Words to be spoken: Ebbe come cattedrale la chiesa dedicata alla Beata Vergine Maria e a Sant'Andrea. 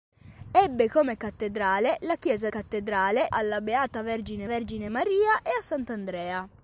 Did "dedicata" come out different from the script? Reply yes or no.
yes